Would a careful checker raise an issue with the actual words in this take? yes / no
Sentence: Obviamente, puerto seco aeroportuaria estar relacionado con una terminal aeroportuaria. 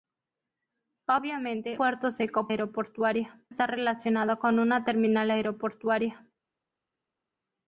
no